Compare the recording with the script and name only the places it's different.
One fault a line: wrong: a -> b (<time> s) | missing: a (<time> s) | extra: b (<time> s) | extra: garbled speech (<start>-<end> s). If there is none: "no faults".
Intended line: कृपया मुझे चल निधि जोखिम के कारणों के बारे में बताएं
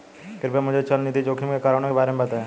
no faults